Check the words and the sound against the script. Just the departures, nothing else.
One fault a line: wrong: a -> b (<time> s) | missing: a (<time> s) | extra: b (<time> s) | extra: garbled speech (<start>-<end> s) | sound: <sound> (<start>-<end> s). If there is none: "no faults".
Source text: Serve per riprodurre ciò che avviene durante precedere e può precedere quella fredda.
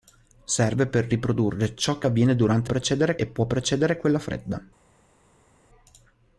no faults